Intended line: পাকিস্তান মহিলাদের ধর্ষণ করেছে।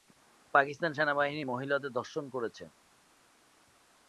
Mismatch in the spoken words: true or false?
true